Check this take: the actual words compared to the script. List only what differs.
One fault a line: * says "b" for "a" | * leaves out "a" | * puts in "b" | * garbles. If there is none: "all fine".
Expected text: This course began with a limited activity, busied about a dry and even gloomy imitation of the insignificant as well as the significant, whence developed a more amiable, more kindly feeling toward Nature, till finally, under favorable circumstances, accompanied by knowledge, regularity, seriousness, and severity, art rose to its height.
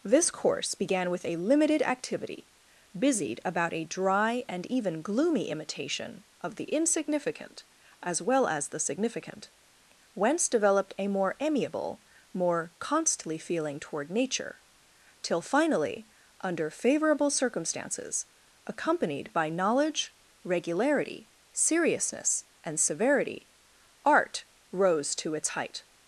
* says "constantly" for "kindly"